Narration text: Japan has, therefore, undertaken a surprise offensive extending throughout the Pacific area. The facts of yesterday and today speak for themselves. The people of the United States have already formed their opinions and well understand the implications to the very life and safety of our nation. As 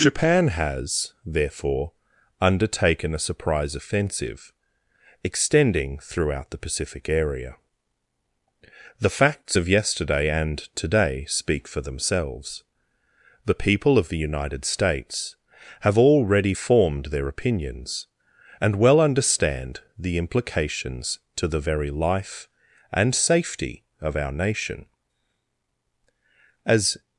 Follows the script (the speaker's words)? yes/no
yes